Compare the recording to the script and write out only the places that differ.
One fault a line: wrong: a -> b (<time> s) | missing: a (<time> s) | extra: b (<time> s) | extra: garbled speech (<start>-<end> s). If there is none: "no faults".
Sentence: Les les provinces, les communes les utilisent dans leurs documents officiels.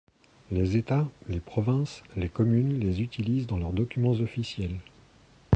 extra: états (0.8 s)